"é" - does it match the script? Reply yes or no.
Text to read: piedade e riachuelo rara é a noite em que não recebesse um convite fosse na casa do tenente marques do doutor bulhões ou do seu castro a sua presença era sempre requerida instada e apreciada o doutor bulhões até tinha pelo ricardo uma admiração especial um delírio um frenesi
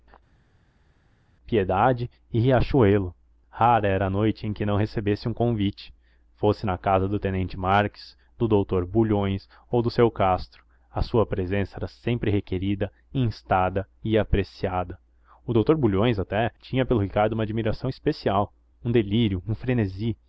no